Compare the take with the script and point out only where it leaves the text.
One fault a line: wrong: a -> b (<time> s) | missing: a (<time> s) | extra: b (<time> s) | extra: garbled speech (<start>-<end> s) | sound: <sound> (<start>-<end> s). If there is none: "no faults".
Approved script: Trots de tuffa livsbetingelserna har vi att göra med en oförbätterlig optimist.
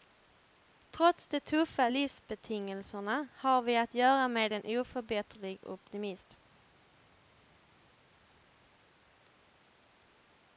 no faults